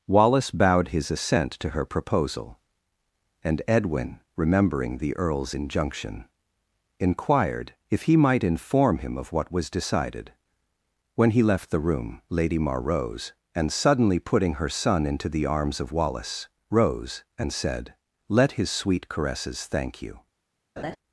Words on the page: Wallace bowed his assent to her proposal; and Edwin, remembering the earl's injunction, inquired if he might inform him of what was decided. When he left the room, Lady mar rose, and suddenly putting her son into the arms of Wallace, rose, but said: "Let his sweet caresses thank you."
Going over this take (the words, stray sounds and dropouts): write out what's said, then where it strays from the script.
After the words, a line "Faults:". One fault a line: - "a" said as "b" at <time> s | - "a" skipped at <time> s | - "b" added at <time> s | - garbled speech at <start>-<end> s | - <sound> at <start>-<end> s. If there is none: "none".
Wallace bowed his assent to her proposal; and Edwin, remembering the earl's injunction, inquired if he might inform him of what was decided. When he left the room, Lady mar rose, and suddenly putting her son into the arms of Wallace, rose, and said: "Let his sweet caresses thank you."
Faults:
- "but" said as "and" at 17.4 s
- laugh at 20.8-21.0 s